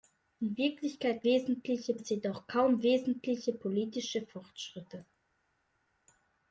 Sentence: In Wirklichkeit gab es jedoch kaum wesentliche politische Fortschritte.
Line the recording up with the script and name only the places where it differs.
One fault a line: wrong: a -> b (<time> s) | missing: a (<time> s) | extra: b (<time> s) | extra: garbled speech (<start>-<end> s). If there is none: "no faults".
wrong: gab -> wesentliche (1.2 s)